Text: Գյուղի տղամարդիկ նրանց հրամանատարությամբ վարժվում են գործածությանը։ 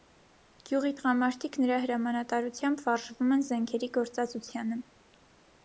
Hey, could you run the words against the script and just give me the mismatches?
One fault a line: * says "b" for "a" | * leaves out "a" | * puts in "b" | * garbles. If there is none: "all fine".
* says "նրա" for "նրանց"
* puts in "զենքերի"